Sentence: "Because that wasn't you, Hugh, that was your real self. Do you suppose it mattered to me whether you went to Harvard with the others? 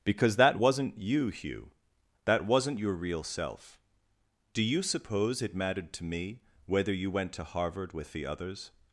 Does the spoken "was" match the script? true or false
false